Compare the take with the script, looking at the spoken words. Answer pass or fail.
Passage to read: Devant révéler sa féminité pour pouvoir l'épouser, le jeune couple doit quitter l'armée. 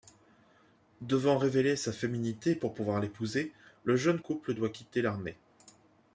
pass